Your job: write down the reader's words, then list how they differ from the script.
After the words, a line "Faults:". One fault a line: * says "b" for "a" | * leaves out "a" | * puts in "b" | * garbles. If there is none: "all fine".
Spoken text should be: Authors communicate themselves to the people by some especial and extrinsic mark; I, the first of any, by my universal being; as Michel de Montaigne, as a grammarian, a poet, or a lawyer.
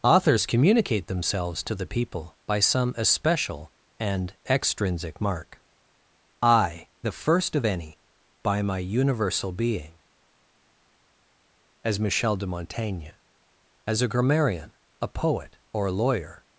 Authors communicate themselves to the people by some especial and extrinsic mark; I, the first of any, by my universal being; as Michel de Montaigne, as a grammarian, a poet, or a lawyer.
Faults:
all fine